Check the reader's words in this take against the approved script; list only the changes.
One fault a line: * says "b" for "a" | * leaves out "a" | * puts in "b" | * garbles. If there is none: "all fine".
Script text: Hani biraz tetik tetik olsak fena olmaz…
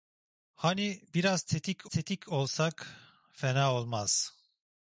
all fine